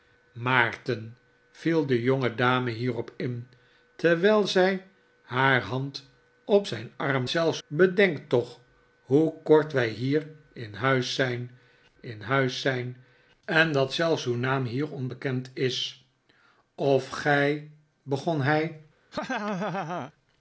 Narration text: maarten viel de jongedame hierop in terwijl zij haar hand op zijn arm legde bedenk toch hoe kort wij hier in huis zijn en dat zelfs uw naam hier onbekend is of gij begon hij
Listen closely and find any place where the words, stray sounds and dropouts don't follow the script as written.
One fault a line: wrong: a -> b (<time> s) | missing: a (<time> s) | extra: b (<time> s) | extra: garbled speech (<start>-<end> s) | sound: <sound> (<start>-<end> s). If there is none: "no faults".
wrong: legde -> zelfs (7.3 s)
extra: in huis zijn (12.0 s)
sound: laugh (19.1-20.1 s)